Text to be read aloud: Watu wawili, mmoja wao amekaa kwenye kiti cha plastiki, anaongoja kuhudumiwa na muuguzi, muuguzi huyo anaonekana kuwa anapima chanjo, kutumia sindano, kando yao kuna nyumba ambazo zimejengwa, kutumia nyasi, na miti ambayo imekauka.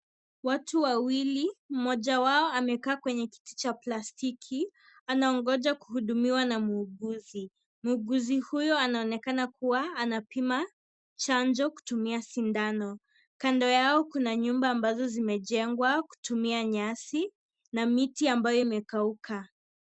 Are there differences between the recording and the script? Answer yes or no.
no